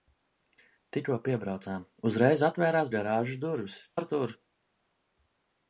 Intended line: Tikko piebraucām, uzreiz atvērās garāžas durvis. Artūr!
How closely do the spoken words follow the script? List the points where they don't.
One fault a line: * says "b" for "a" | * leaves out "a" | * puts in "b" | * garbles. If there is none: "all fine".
all fine